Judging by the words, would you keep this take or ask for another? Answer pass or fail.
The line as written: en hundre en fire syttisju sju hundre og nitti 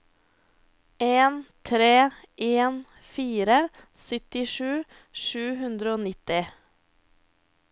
fail